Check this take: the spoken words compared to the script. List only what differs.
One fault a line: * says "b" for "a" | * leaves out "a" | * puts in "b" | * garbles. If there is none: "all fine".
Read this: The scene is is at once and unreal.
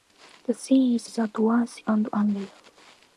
all fine